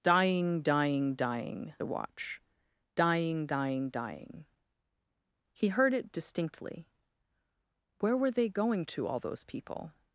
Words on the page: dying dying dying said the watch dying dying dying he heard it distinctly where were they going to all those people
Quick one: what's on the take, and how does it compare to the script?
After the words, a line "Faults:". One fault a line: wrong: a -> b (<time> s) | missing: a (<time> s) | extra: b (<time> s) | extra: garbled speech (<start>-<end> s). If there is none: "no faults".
dying dying dying the watch dying dying dying he heard it distinctly where were they going to all those people
Faults:
missing: said (1.7 s)